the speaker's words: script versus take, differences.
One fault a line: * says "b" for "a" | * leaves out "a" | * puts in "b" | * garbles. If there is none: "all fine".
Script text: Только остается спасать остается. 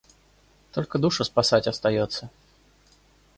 * says "душу" for "остается"